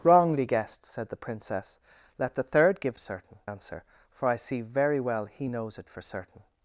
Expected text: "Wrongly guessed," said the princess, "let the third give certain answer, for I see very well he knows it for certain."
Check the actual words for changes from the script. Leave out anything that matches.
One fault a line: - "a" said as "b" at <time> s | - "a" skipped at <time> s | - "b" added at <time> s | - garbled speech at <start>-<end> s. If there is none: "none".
none